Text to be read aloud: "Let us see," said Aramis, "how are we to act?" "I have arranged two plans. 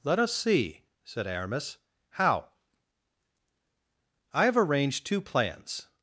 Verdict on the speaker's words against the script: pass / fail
fail